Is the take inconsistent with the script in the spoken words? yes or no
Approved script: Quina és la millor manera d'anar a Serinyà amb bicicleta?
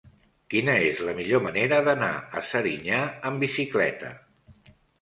no